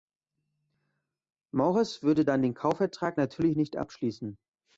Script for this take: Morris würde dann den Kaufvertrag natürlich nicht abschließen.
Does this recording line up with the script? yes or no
yes